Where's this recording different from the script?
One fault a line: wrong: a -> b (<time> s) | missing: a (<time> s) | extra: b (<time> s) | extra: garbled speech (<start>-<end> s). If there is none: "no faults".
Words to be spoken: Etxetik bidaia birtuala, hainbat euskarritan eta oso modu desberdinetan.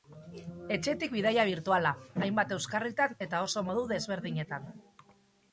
no faults